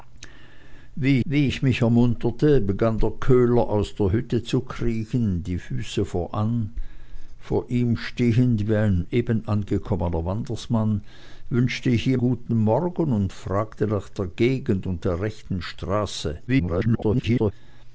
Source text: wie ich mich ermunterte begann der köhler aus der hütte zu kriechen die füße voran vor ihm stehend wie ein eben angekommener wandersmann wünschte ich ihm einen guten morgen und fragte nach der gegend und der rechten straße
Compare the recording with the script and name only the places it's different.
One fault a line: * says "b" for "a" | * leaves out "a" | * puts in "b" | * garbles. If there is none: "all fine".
* puts in "wie"
* leaves out "einen"
* garbles